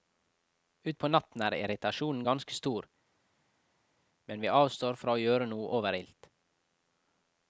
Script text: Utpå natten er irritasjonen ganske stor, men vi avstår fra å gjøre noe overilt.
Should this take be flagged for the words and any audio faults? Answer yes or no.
no